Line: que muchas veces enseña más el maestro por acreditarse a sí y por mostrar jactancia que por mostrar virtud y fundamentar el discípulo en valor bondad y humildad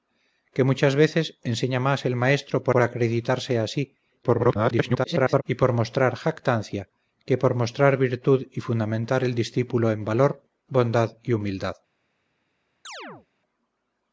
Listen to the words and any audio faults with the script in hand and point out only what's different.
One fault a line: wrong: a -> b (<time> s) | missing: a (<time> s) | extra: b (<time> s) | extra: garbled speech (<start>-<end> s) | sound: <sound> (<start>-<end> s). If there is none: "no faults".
extra: por (2.7 s)
extra: garbled speech (4.2-5.4 s)
sound: chirp (12.8-13.3 s)